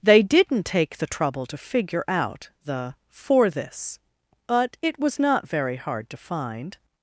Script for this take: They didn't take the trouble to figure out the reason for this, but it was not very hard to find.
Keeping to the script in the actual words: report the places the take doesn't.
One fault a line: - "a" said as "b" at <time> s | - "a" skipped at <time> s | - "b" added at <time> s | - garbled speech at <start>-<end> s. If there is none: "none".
- "reason" skipped at 3.0 s